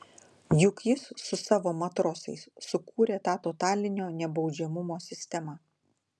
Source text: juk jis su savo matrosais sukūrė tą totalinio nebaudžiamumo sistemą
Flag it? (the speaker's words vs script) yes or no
no